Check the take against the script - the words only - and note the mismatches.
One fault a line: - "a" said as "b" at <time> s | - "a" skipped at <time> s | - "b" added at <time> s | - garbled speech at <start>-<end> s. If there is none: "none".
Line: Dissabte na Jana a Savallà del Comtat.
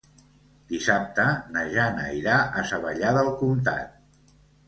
- "irà" added at 2.2 s